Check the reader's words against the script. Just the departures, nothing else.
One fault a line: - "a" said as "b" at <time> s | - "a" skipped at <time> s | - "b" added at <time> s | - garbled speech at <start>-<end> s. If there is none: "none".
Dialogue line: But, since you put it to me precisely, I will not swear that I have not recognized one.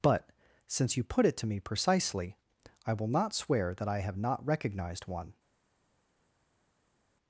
none